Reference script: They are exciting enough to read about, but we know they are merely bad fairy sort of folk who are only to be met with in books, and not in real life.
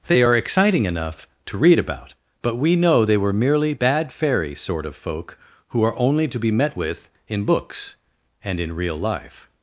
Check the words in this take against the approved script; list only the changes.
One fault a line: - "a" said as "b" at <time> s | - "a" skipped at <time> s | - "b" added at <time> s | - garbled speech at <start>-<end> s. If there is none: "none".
- "are" said as "were" at 3.2 s
- "not" skipped at 8.6 s